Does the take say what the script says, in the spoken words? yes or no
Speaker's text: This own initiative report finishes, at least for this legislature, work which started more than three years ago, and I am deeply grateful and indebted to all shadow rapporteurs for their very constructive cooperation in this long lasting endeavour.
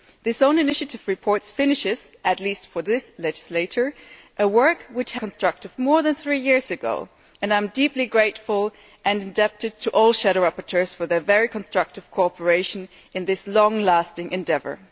no